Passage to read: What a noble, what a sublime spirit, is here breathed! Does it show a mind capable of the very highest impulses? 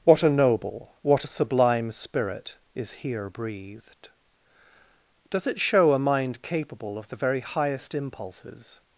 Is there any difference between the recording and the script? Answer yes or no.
no